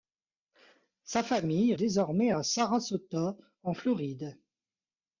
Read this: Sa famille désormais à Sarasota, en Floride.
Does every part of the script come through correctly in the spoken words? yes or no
yes